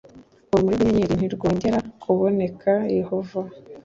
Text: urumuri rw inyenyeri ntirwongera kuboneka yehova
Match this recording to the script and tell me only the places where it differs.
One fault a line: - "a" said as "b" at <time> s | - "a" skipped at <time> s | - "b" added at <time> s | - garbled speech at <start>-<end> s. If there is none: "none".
none